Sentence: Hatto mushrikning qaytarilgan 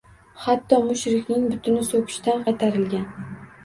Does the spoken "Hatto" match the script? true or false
true